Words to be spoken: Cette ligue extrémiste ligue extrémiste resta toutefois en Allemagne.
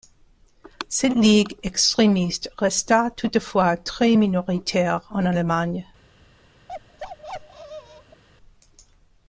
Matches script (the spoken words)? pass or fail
fail